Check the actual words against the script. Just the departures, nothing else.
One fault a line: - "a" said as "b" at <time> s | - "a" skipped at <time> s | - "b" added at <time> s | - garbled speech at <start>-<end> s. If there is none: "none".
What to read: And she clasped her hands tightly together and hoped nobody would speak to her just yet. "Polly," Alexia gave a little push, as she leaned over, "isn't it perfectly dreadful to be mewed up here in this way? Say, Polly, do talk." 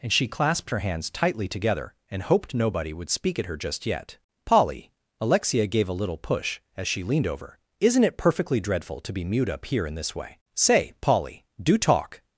- "to" said as "at" at 3.4 s